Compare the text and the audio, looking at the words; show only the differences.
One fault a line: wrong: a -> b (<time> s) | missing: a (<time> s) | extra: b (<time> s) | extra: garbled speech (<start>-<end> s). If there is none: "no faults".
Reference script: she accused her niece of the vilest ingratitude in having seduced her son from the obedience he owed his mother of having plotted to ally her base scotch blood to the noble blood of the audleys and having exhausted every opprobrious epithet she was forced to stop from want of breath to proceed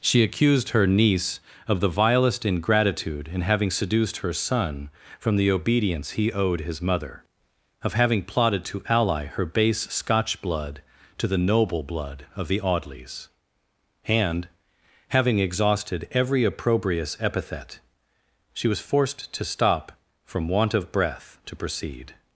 no faults